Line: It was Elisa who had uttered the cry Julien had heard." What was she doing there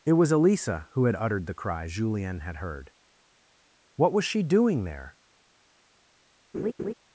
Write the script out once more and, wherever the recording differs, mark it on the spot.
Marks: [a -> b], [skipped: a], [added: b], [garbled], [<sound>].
It was Elisa who had uttered the cry Julien had heard." What was she doing there [laugh]